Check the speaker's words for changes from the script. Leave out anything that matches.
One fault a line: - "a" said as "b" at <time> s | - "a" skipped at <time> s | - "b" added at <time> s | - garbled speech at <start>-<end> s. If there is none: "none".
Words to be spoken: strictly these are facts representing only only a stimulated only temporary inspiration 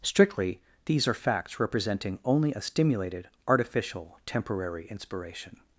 - "only" skipped at 2.5 s
- "only" said as "artificial" at 3.5 s